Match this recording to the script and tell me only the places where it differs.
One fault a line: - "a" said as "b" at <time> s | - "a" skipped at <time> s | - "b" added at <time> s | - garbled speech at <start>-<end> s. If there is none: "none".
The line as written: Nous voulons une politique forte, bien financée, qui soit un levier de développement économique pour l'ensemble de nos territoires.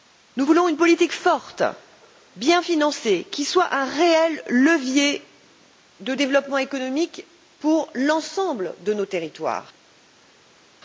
- "réel" added at 3.8 s